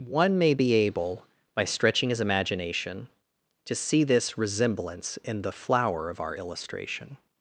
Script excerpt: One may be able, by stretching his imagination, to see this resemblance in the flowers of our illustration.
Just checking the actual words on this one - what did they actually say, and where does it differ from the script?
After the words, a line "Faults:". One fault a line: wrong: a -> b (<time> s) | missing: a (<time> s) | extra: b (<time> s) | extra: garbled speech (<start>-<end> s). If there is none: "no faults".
One may be able, by stretching his imagination, to see this resemblance in the flower of our illustration.
Faults:
wrong: flowers -> flower (5.5 s)